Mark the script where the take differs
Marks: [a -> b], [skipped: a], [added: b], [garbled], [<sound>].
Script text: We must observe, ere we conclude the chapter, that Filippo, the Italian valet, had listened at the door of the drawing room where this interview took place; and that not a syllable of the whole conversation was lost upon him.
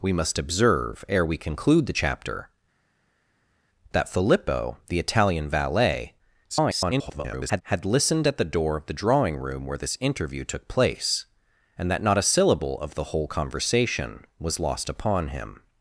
We must observe, ere we conclude the chapter, that Filippo, the Italian valet, [garbled] had listened at the door of the drawing room where this interview took place; and that not a syllable of the whole conversation was lost upon him.